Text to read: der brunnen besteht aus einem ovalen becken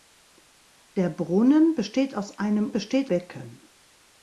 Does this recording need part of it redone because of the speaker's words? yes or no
yes